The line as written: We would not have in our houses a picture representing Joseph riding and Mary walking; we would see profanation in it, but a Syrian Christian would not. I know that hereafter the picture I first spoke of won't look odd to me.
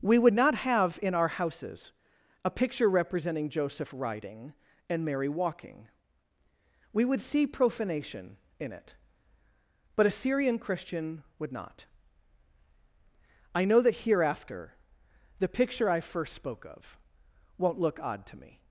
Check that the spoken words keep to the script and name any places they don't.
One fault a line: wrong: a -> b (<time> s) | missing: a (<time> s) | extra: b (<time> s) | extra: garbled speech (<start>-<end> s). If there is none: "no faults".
no faults